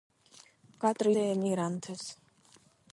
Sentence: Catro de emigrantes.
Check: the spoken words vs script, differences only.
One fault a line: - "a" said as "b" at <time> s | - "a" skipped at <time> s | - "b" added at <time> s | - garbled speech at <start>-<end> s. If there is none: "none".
none